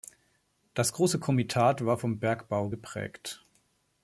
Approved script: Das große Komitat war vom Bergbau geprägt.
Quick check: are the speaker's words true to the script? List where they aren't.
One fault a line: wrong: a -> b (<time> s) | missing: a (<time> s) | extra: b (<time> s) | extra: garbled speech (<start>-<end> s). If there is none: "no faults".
no faults